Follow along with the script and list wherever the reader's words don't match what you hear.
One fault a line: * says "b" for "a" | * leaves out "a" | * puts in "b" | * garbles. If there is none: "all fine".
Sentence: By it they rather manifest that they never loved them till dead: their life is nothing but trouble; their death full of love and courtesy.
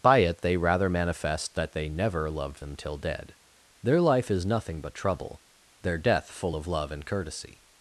all fine